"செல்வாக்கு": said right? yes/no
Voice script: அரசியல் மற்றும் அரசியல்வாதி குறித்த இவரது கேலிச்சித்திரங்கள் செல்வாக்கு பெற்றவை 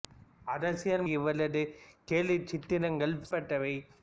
no